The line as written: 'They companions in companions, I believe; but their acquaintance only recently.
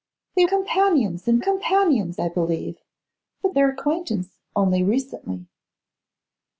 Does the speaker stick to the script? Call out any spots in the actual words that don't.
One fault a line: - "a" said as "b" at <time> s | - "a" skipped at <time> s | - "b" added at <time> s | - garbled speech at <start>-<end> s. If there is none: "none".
none